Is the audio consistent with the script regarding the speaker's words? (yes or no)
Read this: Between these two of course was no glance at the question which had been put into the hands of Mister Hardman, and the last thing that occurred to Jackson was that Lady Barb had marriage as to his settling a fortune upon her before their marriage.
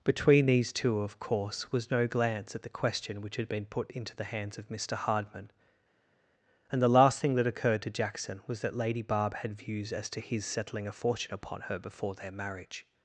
no